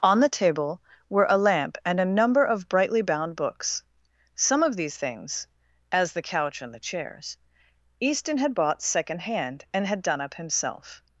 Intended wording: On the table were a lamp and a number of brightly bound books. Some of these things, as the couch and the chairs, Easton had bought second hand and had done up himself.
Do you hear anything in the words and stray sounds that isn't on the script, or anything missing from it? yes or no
no